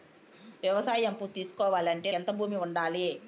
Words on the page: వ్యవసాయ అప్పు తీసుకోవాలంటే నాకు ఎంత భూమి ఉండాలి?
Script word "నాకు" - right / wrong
wrong